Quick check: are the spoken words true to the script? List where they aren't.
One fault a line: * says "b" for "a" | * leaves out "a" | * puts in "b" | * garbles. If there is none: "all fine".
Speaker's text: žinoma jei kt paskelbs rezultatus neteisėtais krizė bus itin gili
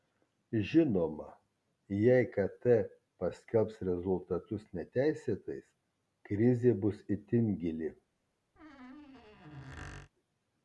all fine